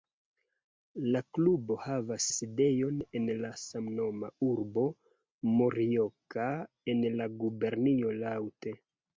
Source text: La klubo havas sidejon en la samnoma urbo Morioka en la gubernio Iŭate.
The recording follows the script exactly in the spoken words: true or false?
true